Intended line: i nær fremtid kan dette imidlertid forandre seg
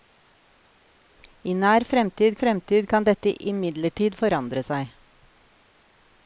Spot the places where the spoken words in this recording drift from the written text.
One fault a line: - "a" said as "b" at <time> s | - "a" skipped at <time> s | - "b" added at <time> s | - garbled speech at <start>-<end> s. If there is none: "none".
- "fremtid" added at 2.4 s